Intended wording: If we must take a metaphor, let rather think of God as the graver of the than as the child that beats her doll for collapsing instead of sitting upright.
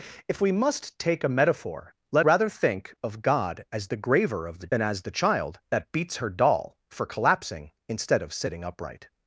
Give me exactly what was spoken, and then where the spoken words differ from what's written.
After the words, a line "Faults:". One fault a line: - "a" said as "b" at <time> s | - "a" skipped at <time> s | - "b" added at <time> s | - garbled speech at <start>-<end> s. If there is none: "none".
If we must take a metaphor, let rather think of God as the graver of the than as the child that beats her doll for collapsing instead of sitting upright.
Faults:
none